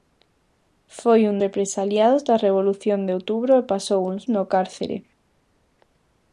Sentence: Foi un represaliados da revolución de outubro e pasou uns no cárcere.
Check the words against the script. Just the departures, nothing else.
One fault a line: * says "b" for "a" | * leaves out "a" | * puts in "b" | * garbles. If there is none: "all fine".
all fine